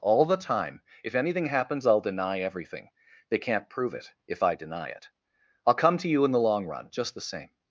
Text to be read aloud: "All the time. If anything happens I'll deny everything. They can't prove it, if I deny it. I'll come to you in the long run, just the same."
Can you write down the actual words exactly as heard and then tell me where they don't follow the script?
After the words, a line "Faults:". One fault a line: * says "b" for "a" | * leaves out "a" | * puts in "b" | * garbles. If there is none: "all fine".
"All the time. If anything happens I'll deny everything. They can't prove it, if I deny it. I'll come to you in the long run, just the same."
Faults:
all fine